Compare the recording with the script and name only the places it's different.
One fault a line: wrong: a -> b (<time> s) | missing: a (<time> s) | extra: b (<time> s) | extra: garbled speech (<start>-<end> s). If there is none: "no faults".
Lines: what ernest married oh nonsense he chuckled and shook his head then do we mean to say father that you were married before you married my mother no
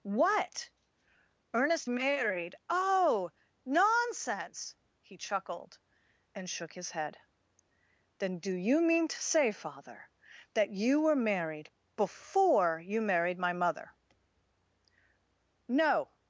wrong: we -> you (8.5 s)